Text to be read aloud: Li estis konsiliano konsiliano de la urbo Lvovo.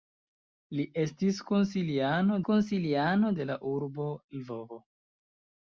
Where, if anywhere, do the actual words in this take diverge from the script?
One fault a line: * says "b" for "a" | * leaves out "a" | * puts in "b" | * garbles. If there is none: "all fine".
all fine